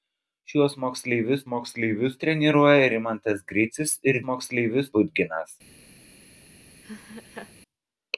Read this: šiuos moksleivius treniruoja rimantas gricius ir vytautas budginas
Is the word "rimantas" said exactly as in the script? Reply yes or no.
yes